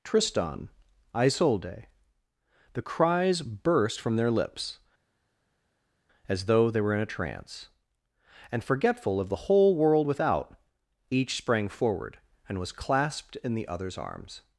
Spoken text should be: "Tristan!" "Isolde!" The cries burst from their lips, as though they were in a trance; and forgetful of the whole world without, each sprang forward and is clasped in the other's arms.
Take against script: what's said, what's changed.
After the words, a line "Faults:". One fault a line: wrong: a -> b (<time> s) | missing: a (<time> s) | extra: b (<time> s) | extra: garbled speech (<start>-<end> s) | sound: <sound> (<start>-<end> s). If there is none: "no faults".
"Tristan!" "Isolde!" The cries burst from their lips, as though they were in a trance; and forgetful of the whole world without, each sprang forward and was clasped in the other's arms.
Faults:
wrong: is -> was (12.6 s)